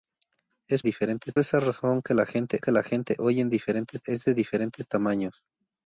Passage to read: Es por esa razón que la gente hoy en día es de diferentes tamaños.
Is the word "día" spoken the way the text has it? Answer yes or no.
no